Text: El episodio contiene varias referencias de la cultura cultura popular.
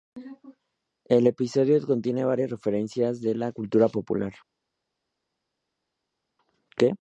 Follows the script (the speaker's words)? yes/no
no